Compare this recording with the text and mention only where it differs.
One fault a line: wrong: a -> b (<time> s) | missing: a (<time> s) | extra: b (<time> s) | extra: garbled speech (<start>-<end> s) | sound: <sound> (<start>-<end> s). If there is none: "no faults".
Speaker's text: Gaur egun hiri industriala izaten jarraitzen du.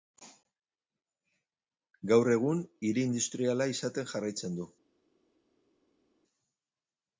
no faults